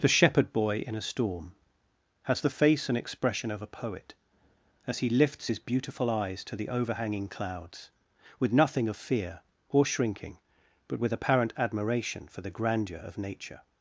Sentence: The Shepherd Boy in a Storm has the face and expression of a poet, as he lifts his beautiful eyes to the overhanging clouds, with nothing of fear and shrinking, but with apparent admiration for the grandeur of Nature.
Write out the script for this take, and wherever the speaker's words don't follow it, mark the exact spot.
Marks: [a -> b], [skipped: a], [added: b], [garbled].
The Shepherd Boy in a Storm has the face and expression of a poet, as he lifts his beautiful eyes to the overhanging clouds, with nothing of fear [and -> or] shrinking, but with apparent admiration for the grandeur of Nature.